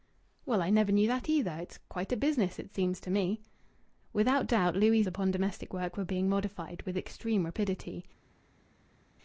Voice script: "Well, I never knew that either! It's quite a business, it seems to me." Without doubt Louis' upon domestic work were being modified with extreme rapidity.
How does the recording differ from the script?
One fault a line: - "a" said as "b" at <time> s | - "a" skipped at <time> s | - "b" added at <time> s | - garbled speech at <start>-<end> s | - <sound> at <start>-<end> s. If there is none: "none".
none